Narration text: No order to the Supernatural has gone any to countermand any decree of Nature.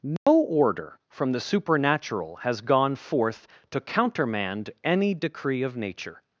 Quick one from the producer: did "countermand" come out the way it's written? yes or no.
yes